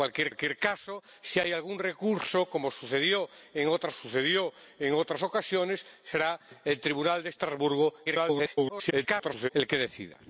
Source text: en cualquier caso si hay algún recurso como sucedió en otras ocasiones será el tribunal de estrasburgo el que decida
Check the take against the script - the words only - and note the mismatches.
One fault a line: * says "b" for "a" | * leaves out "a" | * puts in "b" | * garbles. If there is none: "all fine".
* puts in "cualquier"
* puts in "sucedió en otras"
* garbles